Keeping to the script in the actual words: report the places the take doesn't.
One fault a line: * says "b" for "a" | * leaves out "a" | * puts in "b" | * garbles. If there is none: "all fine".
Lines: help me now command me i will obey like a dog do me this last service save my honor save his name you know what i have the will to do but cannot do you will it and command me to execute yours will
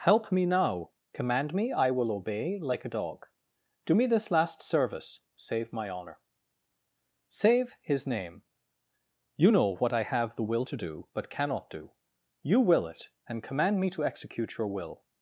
* says "your" for "yours"